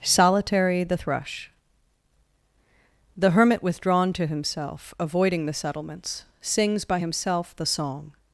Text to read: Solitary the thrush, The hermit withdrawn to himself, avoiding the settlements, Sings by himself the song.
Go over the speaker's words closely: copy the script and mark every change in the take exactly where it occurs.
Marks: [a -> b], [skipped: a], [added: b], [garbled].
Solitary the thrush, The hermit withdrawn to himself, avoiding the settlements, Sings by himself the song.